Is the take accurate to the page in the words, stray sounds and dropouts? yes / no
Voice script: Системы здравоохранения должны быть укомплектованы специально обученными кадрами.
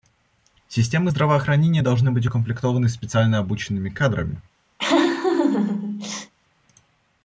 no